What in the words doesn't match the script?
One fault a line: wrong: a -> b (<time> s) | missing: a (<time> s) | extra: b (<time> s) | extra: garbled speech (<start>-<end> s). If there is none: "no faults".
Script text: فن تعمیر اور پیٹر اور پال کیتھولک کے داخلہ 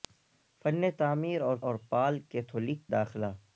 missing: پیٹر (1.6 s)
missing: کے (2.9 s)